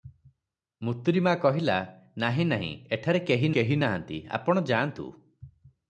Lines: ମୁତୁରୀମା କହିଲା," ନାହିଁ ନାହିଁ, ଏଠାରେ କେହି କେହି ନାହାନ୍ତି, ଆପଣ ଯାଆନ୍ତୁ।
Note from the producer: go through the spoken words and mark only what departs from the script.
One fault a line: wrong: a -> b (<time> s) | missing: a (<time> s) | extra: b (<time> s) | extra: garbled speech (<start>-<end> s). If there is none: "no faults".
no faults